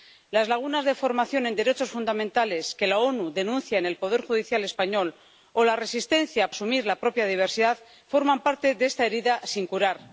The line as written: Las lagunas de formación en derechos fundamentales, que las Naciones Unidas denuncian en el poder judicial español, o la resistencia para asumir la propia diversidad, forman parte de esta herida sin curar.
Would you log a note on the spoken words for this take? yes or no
yes